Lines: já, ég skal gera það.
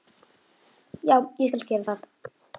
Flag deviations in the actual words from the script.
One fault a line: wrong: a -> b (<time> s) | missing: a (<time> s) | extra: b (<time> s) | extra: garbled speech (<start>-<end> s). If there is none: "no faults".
no faults